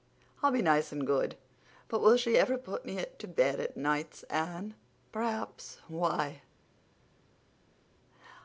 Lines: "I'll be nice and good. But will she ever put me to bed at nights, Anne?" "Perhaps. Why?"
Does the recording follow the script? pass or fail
pass